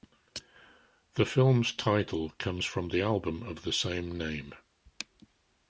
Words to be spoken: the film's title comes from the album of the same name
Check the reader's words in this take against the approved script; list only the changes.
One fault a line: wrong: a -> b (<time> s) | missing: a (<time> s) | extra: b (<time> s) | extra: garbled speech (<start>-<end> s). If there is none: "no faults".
no faults